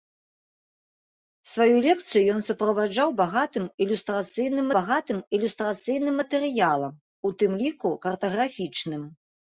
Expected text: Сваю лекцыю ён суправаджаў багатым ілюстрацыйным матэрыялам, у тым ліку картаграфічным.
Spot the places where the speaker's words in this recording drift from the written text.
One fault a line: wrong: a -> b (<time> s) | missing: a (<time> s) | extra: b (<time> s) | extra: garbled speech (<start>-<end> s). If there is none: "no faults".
extra: багатым ілюстрацыйным (4.8 s)